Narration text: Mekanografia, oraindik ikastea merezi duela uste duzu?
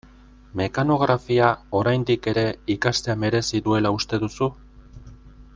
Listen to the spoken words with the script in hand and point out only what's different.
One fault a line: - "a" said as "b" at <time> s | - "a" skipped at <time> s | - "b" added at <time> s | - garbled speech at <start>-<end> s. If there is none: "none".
- "ere" added at 2.3 s